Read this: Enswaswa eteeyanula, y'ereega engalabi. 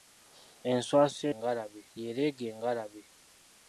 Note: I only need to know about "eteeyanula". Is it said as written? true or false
false